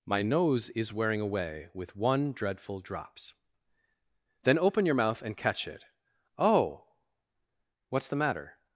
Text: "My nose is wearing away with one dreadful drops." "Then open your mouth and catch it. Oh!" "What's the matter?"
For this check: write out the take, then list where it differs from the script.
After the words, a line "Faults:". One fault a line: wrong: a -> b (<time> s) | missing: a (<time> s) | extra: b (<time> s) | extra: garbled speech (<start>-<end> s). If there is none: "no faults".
"My nose is wearing away with one dreadful drops." "Then open your mouth and catch it. Oh!" "What's the matter?"
Faults:
no faults